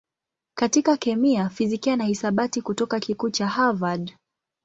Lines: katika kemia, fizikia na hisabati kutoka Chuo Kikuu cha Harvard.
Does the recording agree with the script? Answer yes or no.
no